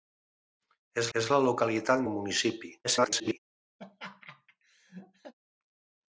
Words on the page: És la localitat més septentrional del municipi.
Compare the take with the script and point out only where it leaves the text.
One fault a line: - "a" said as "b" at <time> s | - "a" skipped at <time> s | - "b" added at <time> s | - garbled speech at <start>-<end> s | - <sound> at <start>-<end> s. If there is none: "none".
- "és" added at 1.2 s
- "més septentrional" skipped at 2.1 s
- garbled speech at 2.8-3.4 s
- laugh at 3.8-5.3 s